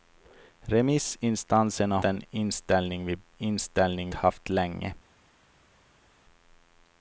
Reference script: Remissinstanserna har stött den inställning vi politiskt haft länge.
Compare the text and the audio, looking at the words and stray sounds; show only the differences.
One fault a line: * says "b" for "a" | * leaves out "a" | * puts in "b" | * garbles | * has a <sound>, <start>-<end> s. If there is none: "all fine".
* leaves out "har stött"
* says "inställning" for "politiskt"